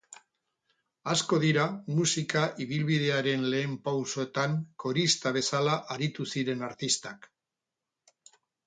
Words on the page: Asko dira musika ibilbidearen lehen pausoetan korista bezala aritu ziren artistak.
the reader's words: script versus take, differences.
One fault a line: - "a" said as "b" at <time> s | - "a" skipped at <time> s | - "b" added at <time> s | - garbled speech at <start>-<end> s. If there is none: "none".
none